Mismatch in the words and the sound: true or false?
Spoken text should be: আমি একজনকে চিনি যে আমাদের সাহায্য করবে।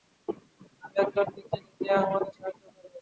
false